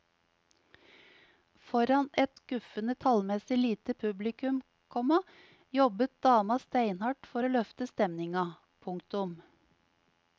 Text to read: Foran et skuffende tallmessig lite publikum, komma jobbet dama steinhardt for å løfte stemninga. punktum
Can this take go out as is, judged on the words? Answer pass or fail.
pass